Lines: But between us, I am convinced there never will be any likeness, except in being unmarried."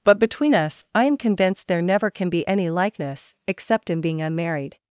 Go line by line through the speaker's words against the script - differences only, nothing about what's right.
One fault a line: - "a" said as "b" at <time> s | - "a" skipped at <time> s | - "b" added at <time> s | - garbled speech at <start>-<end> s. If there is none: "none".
- "will" said as "can" at 2.1 s